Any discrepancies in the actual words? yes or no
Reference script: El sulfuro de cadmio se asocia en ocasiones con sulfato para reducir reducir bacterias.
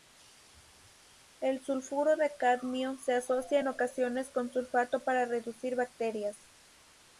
yes